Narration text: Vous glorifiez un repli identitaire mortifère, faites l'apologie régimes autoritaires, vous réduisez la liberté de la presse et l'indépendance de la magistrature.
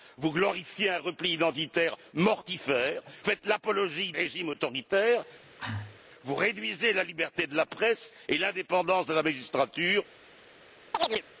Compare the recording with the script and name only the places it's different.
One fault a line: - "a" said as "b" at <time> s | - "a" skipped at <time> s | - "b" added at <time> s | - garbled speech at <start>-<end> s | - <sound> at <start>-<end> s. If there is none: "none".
- cough at 5.4-6.0 s
- chirp at 10.9-11.2 s